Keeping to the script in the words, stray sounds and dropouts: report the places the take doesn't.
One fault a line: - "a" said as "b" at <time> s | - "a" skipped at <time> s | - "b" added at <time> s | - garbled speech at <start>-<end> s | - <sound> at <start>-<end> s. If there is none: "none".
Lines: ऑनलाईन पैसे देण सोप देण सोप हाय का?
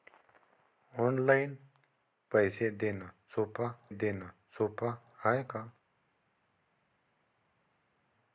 none